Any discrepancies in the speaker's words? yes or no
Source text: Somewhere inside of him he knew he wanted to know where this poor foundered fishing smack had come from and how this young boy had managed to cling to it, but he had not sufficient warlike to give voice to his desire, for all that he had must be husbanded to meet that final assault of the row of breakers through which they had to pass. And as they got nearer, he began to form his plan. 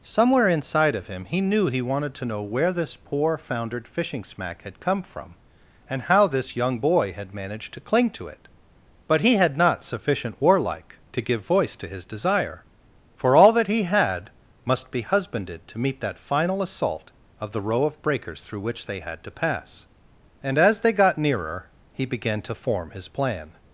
no